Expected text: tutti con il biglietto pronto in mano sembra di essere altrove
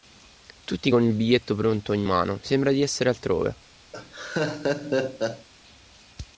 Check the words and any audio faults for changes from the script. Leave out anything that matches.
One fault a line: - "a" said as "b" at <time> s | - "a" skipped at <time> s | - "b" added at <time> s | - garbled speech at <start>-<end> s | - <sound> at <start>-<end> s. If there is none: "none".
- laugh at 3.9-5.5 s